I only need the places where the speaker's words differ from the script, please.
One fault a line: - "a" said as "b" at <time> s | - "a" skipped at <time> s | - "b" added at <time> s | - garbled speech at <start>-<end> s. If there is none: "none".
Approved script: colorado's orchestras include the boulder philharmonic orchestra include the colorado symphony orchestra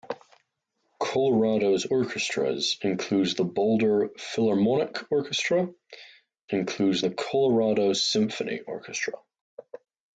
none